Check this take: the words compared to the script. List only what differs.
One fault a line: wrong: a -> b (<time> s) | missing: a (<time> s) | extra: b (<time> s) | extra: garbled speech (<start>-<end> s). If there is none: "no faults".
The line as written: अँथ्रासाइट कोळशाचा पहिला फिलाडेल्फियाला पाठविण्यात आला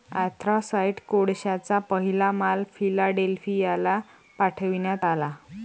extra: माल (2.3 s)